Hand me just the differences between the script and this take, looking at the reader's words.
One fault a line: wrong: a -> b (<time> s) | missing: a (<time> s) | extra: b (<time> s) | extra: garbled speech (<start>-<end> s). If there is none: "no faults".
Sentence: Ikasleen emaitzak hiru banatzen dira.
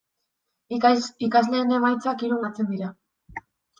no faults